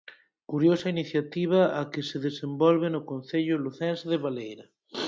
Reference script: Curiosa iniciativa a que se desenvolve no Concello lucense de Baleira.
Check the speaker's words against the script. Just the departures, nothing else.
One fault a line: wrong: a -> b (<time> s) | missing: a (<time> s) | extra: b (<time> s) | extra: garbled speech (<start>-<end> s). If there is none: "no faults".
no faults